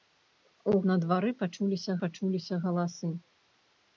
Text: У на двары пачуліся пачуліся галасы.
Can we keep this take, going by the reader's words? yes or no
yes